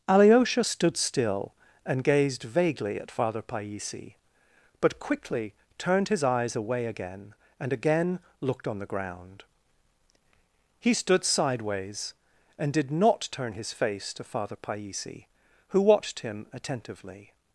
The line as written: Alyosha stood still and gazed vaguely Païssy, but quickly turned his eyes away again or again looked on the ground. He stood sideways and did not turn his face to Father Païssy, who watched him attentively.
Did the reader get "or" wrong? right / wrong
wrong